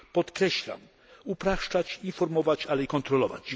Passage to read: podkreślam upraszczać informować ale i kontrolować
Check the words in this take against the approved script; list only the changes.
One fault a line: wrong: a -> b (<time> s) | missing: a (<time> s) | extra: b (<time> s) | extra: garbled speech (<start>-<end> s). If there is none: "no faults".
no faults